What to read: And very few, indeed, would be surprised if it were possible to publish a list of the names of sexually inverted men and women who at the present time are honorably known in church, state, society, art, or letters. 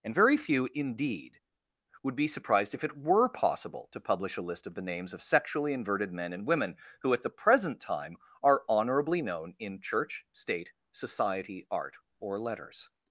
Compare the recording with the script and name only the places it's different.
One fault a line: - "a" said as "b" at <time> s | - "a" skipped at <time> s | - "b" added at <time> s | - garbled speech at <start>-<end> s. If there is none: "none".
none